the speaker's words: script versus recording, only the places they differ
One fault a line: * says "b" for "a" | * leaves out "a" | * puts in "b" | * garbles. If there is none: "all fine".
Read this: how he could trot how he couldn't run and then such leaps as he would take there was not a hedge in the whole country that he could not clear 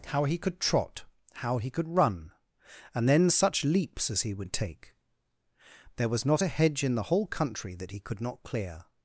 * says "could" for "couldn't"